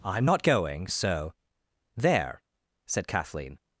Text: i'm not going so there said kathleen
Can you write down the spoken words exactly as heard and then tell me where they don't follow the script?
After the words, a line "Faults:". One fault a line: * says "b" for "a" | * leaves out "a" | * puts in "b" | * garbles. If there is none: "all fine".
i'm not going so there said kathleen
Faults:
all fine